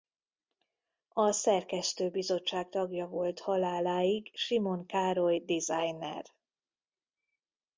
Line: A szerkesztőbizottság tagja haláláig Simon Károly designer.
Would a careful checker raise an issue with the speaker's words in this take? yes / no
yes